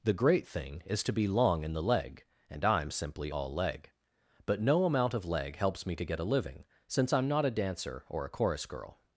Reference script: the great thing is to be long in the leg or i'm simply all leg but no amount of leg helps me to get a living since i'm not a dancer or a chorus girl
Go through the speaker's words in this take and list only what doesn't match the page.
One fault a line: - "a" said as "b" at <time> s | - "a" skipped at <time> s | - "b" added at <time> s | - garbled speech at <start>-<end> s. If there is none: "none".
- "or" said as "and" at 2.5 s